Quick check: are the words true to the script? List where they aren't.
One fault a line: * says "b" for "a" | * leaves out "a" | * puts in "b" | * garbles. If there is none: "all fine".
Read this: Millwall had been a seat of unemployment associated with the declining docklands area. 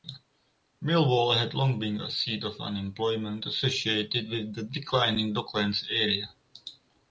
* puts in "long"